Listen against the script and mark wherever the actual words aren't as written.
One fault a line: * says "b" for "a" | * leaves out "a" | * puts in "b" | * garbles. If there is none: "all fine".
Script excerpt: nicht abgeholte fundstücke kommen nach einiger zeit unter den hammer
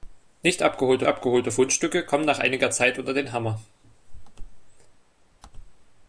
* puts in "abgeholte"